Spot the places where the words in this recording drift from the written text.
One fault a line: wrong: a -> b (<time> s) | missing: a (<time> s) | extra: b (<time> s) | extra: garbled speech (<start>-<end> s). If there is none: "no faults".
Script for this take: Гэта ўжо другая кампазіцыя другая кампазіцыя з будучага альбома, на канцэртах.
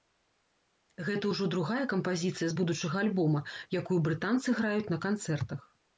missing: другая кампазіцыя (2.5 s)
extra: якую брытанцы граюць (3.8 s)